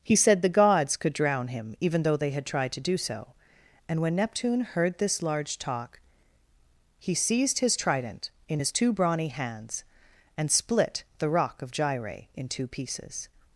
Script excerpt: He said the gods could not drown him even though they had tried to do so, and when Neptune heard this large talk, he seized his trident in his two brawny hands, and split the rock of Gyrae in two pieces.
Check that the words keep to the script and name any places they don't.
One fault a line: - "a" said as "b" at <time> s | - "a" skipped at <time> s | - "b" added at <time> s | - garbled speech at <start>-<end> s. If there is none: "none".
- "not" skipped at 1.1 s